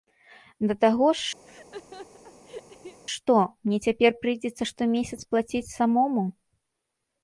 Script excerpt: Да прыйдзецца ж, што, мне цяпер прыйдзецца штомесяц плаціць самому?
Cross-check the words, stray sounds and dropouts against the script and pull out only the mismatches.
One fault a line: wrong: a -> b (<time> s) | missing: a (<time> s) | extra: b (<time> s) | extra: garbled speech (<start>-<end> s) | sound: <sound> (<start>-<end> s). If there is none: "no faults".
wrong: прыйдзецца -> таго (0.8 s)
sound: laugh (1.4-3.0 s)